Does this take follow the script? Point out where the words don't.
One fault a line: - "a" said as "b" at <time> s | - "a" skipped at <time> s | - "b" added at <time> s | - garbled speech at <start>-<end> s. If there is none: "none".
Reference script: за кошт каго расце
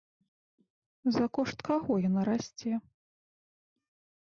- "яна" added at 2.1 s